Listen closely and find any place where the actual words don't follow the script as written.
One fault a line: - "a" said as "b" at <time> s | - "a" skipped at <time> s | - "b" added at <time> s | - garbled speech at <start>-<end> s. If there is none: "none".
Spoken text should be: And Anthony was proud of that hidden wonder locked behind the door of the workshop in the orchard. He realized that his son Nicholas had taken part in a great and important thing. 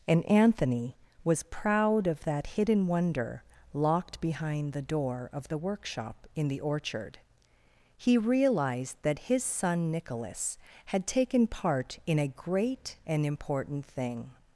none